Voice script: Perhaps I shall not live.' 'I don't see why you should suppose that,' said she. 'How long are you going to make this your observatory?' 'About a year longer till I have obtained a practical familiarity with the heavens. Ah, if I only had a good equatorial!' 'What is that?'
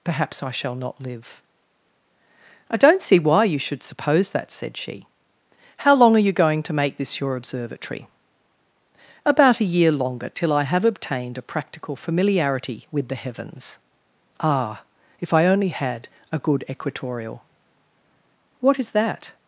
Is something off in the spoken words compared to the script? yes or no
no